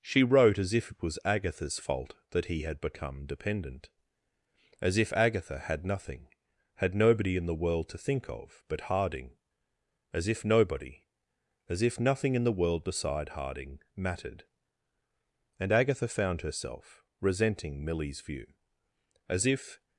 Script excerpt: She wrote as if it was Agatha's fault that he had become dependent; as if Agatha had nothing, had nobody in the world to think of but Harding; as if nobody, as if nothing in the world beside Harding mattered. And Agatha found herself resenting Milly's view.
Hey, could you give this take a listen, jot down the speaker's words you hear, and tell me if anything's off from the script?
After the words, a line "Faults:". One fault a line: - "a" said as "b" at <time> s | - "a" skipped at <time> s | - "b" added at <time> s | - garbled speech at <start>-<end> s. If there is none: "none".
She wrote as if it was Agatha's fault that he had become dependent; as if Agatha had nothing, had nobody in the world to think of but Harding; as if nobody, as if nothing in the world beside Harding mattered. And Agatha found herself resenting Milly's view. As if
Faults:
- "As if" added at 19.3 s